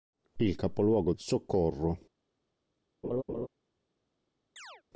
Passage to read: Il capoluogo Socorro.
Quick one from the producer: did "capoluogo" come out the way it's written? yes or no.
yes